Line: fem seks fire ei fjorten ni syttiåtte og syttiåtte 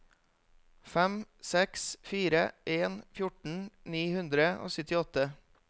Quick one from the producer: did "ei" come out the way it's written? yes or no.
no